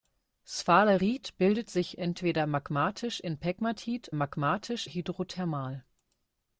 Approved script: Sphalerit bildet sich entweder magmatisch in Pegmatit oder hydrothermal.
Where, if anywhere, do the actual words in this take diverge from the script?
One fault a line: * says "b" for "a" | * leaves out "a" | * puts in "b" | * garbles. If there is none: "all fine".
* says "magmatisch" for "oder"